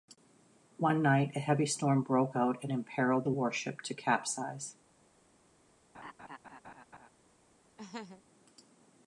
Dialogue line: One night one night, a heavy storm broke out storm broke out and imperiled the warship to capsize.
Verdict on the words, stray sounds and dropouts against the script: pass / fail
fail